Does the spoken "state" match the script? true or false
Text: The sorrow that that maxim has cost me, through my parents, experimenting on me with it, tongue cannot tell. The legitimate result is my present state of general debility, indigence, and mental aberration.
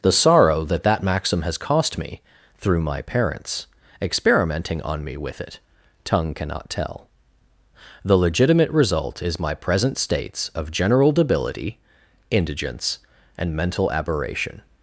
false